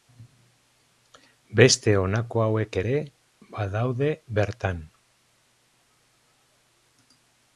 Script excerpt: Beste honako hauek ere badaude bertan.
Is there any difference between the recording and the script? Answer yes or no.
no